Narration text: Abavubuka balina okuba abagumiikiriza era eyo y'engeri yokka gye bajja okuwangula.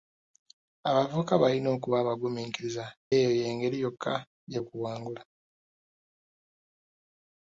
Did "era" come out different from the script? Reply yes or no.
yes